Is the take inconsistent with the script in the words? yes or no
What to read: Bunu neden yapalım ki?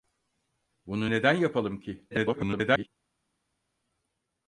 yes